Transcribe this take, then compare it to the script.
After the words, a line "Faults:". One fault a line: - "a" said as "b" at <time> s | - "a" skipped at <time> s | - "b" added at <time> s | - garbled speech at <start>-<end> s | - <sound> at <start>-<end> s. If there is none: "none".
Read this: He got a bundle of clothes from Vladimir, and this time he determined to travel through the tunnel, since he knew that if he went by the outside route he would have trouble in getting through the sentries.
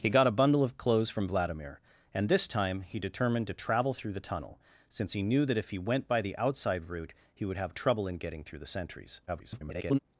He got a bundle of clothes from Vladimir, and this time he determined to travel through the tunnel, since he knew that if he went by the outside route he would have trouble in getting through the sentries. [garbled]
Faults:
- garbled speech at 9.3-10.0 s